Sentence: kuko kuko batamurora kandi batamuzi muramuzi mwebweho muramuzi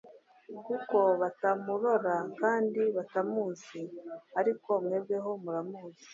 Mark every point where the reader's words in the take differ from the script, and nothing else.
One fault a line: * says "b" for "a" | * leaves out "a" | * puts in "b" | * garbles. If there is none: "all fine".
* leaves out "kuko"
* says "ariko" for "muramuzi"